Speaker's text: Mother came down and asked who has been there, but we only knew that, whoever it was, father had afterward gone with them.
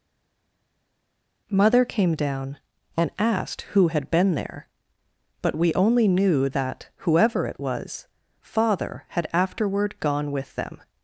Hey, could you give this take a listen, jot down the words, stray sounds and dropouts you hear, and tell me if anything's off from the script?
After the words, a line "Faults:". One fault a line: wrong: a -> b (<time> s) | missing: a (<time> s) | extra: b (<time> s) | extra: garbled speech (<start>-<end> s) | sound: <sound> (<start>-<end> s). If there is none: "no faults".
Mother came down and asked who had been there, but we only knew that, whoever it was, father had afterward gone with them.
Faults:
wrong: has -> had (3.9 s)